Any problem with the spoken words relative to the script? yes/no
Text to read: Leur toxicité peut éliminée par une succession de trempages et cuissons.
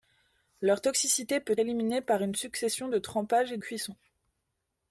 no